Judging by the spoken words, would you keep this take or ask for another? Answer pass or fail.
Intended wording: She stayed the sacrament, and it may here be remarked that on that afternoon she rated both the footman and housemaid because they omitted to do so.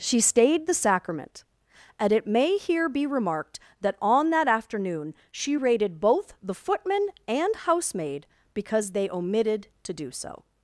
pass